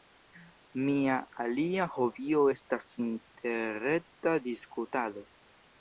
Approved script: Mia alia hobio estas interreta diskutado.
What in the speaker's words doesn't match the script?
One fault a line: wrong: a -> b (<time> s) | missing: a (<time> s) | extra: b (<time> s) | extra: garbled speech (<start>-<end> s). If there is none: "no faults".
no faults